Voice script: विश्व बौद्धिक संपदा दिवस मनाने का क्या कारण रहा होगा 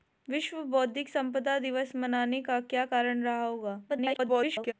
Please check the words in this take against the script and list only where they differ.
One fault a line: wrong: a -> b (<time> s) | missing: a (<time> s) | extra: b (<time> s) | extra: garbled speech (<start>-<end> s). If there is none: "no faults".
extra: garbled speech (3.9-4.7 s)